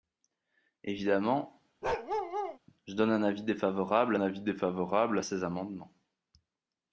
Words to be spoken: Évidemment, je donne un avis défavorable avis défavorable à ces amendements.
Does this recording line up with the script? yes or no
yes